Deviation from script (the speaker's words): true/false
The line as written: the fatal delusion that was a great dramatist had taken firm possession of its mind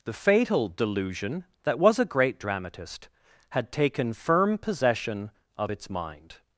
false